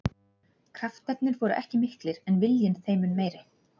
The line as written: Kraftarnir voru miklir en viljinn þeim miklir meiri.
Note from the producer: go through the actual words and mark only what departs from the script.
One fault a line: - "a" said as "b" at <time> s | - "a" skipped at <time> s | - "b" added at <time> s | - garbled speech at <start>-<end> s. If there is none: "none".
- "ekki" added at 1.6 s
- "miklir" said as "mun" at 3.1 s